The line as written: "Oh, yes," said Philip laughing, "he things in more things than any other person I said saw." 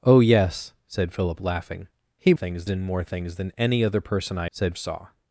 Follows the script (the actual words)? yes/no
yes